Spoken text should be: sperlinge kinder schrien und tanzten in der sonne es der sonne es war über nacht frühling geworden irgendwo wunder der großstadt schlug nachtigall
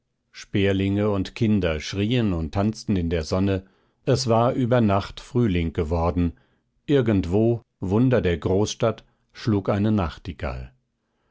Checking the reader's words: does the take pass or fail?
fail